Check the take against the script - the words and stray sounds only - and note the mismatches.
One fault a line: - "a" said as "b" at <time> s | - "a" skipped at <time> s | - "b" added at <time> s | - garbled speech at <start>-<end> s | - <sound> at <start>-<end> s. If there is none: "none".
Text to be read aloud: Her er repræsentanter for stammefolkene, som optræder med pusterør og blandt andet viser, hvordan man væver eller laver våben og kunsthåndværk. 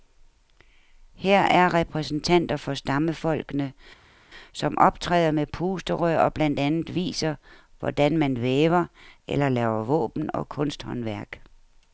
none